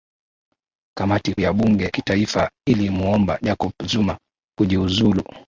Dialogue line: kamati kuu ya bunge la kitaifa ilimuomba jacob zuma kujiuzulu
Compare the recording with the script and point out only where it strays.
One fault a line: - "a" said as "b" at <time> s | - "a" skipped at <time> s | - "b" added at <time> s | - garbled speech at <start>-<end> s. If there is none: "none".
- "kuu" skipped at 1.4 s
- "la" skipped at 1.9 s